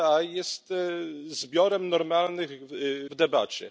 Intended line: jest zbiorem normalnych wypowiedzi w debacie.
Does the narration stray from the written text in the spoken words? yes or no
yes